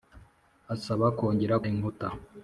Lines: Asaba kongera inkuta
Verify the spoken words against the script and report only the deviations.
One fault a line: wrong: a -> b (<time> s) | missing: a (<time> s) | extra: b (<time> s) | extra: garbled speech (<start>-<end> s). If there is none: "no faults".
no faults